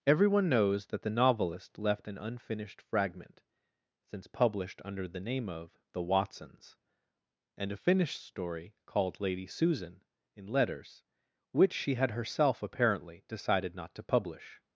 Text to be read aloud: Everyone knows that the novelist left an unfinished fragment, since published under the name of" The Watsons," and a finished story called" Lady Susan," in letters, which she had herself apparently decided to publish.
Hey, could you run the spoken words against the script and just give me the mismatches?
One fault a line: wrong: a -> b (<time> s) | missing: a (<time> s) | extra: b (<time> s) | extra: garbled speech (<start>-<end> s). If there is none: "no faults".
extra: not (13.8 s)